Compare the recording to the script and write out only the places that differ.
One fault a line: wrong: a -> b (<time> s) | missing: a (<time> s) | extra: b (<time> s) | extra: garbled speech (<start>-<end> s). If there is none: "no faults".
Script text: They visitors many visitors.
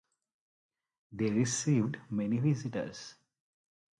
wrong: visitors -> received (1.3 s)